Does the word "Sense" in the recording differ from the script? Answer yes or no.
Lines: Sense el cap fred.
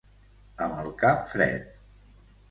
yes